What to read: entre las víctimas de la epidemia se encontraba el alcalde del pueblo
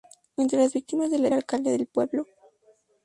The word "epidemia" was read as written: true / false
false